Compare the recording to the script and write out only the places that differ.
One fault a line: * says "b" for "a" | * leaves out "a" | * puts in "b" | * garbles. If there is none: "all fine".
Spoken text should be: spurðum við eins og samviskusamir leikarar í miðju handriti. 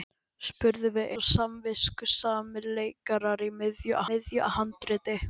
* leaves out "eins"
* puts in "miðju"